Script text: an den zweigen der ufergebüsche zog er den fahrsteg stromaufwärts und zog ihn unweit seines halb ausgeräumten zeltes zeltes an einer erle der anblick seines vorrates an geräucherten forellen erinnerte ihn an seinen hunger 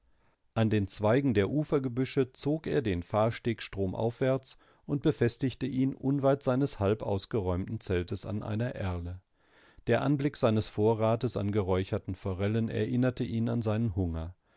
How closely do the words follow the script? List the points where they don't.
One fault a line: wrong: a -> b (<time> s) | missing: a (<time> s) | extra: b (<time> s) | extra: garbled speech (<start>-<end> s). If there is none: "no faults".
wrong: zog -> befestigte (5.0 s)
missing: zeltes (8.2 s)